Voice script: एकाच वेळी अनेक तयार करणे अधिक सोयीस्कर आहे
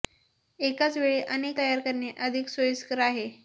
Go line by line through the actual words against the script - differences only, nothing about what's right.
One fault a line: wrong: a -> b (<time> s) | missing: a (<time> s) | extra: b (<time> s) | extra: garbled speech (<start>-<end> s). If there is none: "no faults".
no faults